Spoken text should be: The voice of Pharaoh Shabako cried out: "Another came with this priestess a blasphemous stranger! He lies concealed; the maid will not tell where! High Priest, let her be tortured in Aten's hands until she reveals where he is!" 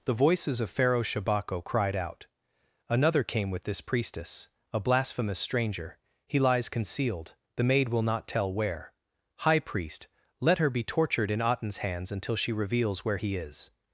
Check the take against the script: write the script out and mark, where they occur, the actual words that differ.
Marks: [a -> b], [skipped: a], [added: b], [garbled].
The [voice -> voices] of Pharaoh Shabako cried out: "Another came with this priestess a blasphemous stranger! He lies concealed; the maid will not tell where! High Priest, let her be tortured in Aten's hands until she reveals where he is!"